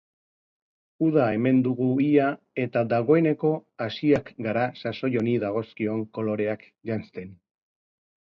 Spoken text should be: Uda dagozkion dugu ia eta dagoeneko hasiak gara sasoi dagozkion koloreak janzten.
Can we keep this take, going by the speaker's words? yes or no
no